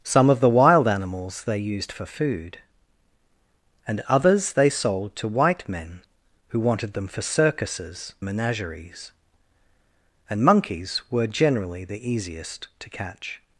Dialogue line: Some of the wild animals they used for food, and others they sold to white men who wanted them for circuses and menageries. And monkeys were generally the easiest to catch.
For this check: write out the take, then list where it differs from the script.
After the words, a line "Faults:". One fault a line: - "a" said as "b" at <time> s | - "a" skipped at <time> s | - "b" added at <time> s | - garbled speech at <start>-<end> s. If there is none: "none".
Some of the wild animals they used for food, and others they sold to white men who wanted them for circuses menageries. And monkeys were generally the easiest to catch.
Faults:
- "and" skipped at 8.1 s